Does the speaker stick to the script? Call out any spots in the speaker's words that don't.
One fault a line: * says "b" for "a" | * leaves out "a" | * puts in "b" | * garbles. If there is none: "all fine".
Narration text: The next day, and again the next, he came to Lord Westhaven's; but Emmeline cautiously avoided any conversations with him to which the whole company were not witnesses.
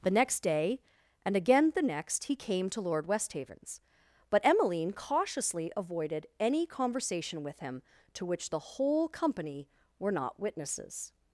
* says "conversation" for "conversations"